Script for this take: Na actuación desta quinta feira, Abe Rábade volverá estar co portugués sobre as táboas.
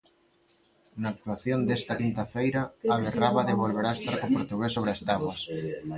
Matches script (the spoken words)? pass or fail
pass